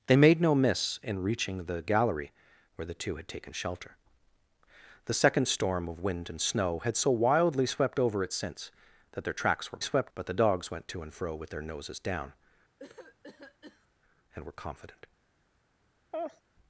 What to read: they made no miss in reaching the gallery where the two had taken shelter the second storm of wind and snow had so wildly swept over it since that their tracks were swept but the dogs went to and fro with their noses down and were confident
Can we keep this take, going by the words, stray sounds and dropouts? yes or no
no